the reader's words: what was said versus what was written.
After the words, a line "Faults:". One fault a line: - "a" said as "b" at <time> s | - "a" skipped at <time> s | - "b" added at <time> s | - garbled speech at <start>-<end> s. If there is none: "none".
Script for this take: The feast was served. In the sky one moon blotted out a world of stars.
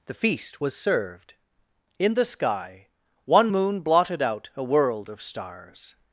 The feast was served. In the sky one moon blotted out a world of stars.
Faults:
none